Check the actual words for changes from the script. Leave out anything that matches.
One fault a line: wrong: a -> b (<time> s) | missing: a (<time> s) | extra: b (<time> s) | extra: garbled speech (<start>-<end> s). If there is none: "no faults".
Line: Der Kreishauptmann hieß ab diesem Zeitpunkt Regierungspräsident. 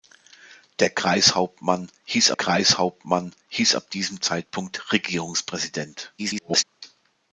extra: Kreishauptmann hieß (2.3 s)
extra: garbled speech (6.2-6.6 s)